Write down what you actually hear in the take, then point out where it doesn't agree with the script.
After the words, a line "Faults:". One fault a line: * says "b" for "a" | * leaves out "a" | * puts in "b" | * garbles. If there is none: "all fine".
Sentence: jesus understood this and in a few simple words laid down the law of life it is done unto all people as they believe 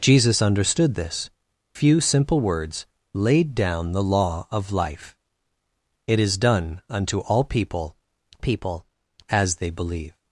jesus understood this few simple words laid down the law of life it is done unto all people people as they believe
Faults:
* leaves out "and in a"
* puts in "people"